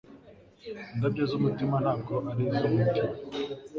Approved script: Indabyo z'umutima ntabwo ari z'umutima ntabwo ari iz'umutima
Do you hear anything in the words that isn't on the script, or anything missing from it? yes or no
yes